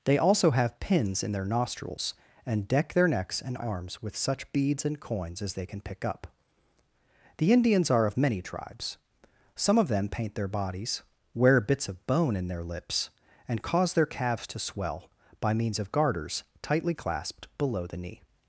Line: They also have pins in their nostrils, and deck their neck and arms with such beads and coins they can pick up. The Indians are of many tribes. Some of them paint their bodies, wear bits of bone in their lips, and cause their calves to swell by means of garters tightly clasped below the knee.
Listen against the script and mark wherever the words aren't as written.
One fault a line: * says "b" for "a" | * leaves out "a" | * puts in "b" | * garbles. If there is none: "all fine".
* says "necks" for "neck"
* puts in "as"